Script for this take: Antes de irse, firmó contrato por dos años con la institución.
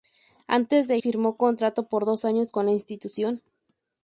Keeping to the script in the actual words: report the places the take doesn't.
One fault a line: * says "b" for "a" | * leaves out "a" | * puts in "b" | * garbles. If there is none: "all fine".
* leaves out "irse"